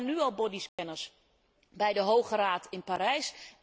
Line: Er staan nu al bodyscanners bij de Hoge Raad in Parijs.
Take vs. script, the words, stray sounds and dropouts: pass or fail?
fail